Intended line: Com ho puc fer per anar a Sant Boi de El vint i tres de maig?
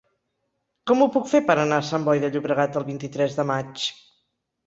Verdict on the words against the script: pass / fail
fail